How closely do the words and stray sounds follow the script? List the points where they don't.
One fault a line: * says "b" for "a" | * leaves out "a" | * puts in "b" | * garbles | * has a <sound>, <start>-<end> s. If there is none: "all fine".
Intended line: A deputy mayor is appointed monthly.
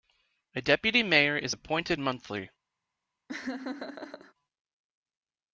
* has a laugh, 3.3-4.3 s